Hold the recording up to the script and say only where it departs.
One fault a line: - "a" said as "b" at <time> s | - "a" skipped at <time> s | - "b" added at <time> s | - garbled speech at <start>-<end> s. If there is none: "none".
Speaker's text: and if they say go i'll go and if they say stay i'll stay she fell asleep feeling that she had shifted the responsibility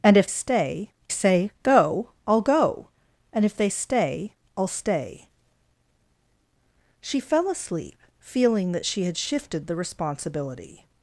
- "they" said as "stay" at 0.3 s
- "say" skipped at 3.7 s